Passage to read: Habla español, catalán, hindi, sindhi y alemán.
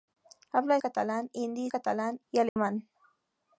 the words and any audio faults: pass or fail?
fail